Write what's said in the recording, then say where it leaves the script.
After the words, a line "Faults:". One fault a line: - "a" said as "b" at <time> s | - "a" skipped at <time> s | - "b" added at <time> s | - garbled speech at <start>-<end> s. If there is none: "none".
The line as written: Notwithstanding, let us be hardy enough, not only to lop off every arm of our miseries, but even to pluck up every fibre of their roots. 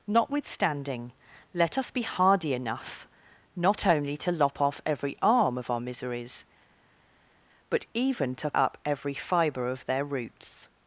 Notwithstanding, let us be hardy enough, not only to lop off every arm of our miseries, but even to up every fibre of their roots.
Faults:
- "pluck" skipped at 8.5 s